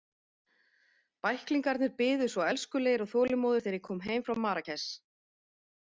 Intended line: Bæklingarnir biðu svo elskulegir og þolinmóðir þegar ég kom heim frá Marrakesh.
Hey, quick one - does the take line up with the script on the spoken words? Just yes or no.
yes